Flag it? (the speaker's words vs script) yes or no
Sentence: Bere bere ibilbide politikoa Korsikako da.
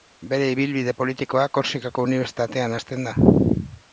yes